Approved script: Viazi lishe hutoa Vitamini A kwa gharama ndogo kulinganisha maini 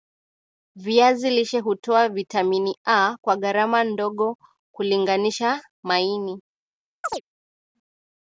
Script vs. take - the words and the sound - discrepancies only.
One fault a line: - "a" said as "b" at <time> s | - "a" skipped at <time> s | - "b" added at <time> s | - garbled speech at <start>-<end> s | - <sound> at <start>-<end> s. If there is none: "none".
- chirp at 7.0-7.2 s